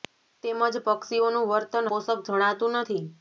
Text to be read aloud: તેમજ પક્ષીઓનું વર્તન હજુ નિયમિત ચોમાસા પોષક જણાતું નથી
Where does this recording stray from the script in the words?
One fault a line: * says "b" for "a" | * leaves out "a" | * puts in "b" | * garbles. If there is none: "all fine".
* leaves out "હજુ નિયમિત ચોમાસા"